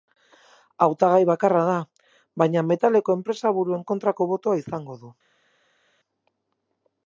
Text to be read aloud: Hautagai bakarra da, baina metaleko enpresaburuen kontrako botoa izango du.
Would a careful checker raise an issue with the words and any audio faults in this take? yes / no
no